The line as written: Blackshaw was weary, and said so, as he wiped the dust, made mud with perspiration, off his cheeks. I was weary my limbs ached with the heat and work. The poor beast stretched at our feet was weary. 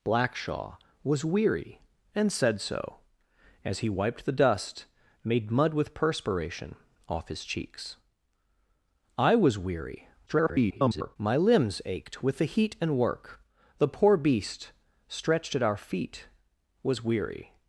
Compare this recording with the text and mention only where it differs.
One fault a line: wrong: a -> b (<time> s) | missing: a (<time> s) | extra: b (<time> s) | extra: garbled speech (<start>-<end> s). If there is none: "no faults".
extra: garbled speech (10.3-11.2 s)